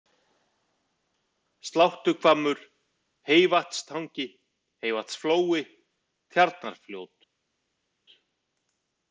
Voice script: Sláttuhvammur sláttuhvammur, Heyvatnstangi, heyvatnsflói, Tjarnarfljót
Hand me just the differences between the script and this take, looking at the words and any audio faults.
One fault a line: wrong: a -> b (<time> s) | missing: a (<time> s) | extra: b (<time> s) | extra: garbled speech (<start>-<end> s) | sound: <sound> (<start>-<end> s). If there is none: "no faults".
missing: sláttuhvammur (2.6 s)